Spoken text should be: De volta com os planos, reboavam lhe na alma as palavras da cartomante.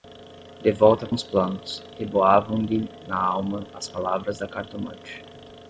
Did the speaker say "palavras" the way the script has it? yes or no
yes